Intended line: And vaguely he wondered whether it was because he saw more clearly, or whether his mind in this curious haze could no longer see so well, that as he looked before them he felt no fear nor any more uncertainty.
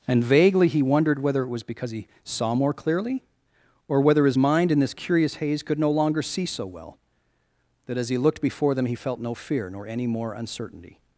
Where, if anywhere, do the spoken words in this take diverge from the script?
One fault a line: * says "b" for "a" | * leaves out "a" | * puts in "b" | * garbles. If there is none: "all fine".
all fine